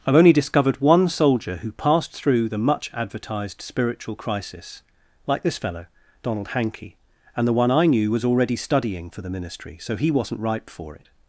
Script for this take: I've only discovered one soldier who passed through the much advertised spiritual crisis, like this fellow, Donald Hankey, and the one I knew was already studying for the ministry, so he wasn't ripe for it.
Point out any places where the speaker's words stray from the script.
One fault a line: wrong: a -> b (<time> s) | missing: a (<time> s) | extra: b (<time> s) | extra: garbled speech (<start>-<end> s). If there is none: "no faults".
no faults